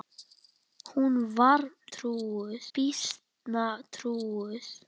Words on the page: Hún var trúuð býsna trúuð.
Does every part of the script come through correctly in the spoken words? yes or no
yes